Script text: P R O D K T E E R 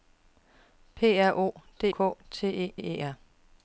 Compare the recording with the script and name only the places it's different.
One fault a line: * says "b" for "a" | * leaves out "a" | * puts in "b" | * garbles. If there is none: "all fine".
all fine